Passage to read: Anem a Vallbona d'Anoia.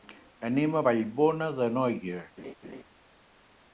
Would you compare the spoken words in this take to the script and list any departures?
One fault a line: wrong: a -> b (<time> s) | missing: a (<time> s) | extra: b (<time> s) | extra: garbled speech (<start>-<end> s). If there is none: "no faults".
no faults